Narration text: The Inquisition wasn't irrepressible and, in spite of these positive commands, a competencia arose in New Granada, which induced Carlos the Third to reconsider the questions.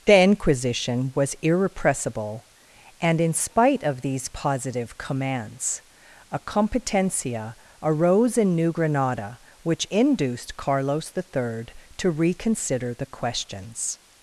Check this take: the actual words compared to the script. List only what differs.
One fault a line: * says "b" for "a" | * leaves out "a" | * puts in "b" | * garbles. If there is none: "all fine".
* says "was" for "wasn't"